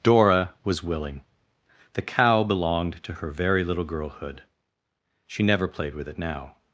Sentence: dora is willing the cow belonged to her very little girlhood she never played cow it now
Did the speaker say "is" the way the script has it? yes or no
no